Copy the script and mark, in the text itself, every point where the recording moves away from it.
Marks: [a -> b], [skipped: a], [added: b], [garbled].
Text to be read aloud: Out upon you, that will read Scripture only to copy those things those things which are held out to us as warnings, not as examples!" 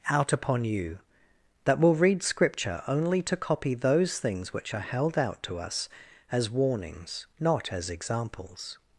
Out upon you, that will read Scripture only to copy those things [skipped: those things] which are held out to us as warnings, not as examples!"